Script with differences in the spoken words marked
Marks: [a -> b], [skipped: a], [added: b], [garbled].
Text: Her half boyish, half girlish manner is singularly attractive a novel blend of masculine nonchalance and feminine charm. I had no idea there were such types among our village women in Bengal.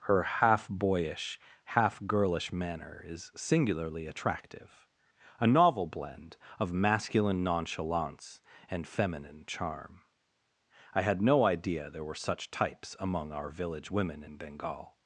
Her half boyish, half girlish manner is singularly attractive a novel blend of masculine nonchalance and feminine charm. I had no idea there were such types among our village women in Bengal.